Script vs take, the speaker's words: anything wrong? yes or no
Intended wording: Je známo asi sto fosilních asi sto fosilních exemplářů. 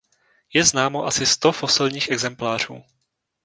yes